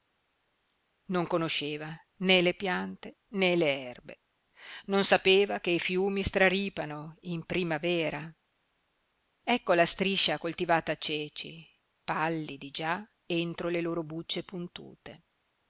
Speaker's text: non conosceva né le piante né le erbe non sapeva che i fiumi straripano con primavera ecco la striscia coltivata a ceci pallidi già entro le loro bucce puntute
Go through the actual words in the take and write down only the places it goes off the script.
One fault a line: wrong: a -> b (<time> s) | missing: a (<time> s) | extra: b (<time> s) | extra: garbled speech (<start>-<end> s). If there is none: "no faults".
wrong: con -> in (7.2 s)